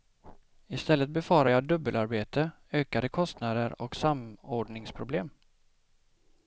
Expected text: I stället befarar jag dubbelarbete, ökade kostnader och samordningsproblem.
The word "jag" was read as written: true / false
true